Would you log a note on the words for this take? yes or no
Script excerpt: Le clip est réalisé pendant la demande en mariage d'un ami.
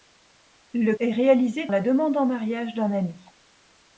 yes